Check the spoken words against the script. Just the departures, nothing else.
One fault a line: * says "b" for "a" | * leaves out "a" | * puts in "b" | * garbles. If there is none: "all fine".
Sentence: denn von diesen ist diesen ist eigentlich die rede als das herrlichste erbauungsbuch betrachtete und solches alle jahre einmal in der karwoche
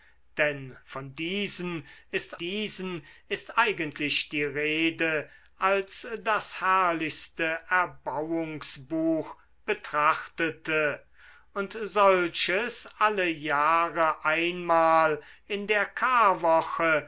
all fine